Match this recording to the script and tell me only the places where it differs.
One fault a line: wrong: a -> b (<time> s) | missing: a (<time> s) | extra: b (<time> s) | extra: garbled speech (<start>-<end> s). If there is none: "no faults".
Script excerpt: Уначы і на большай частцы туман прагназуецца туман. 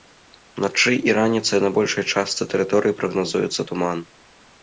extra: раніцай (1.2 s)
wrong: туман -> тэрыторыі (2.5 s)